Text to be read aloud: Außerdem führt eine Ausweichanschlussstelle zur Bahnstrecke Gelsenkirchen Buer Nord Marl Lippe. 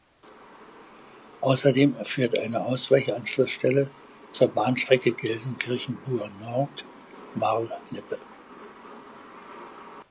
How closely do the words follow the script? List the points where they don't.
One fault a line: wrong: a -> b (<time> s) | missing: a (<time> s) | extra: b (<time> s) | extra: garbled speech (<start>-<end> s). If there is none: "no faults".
no faults